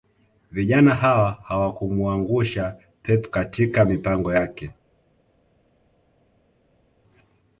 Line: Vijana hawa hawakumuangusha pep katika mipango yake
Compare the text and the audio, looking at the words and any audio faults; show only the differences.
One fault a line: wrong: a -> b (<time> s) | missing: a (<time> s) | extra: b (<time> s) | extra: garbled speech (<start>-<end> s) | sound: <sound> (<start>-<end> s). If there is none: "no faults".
no faults